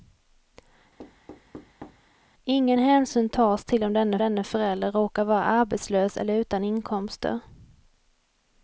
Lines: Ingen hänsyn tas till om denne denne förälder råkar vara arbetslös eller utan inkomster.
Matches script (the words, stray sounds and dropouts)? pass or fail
fail